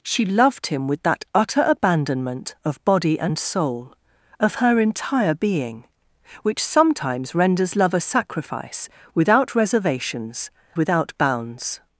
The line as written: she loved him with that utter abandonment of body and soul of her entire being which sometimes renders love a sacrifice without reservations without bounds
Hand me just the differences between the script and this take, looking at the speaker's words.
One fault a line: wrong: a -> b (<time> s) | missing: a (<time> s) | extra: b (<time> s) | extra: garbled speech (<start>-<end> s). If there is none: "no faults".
no faults